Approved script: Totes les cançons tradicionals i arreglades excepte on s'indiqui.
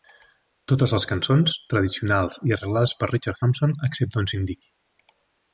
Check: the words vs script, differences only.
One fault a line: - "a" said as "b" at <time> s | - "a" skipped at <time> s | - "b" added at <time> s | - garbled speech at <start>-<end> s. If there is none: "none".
- "per Richard Thompson" added at 3.0 s